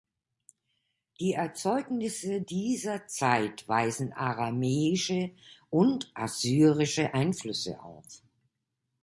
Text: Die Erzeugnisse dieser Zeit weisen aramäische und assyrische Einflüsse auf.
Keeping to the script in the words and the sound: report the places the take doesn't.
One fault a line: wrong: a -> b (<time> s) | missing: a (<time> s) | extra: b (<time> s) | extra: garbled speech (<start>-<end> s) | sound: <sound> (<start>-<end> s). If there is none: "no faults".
no faults